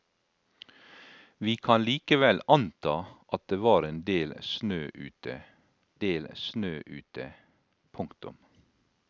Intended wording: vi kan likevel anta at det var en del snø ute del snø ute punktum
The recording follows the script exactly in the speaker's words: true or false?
true